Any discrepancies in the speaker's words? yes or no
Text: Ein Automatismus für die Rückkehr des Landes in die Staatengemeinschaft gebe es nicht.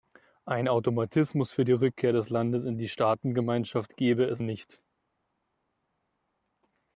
no